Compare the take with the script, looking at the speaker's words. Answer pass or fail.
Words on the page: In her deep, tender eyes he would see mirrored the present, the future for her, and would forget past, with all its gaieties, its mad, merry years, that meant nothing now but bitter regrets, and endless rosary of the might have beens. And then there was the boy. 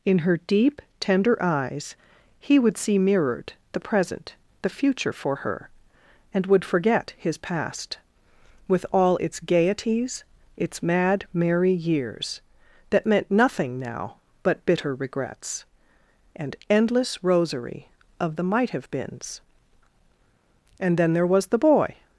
fail